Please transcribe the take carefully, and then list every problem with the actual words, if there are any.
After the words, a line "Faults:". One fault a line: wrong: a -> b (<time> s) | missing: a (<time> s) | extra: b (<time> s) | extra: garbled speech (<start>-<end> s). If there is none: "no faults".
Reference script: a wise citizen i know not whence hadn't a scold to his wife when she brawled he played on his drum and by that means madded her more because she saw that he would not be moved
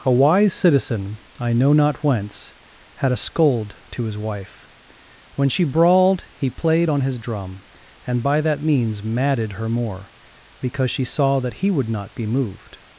a wise citizen i know not whence had a scold to his wife when she brawled he played on his drum and by that means madded her more because she saw that he would not be moved
Faults:
wrong: hadn't -> had (2.9 s)